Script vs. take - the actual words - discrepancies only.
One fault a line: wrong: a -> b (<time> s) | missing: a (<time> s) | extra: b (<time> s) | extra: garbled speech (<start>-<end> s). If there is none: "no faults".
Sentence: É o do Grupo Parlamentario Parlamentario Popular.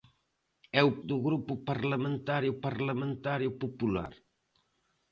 no faults